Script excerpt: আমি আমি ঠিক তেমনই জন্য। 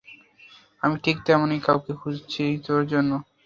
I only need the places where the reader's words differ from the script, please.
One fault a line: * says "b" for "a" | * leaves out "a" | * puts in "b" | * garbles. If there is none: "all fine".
* leaves out "আমি"
* puts in "কাউকে খুঁজছি তোর"